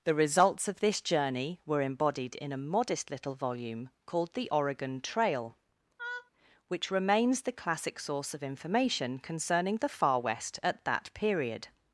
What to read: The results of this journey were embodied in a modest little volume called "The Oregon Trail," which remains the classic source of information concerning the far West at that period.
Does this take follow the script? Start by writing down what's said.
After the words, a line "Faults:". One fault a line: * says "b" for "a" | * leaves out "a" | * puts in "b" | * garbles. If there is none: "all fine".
The results of this journey were embodied in a modest little volume called "The Oregon Trail," which remains the classic source of information concerning the far West at that period.
Faults:
all fine